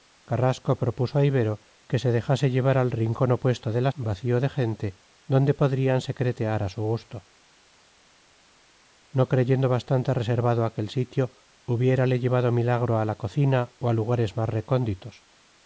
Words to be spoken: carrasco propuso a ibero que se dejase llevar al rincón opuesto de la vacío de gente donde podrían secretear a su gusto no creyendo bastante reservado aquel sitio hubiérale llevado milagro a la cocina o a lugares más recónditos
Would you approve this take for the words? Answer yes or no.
yes